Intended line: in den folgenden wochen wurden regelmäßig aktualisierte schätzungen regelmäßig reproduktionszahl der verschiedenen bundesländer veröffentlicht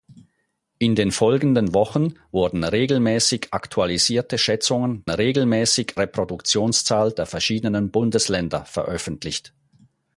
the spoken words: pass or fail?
pass